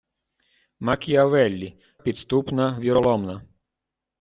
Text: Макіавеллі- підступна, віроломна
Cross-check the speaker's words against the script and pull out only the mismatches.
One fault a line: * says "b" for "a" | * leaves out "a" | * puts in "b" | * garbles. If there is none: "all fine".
all fine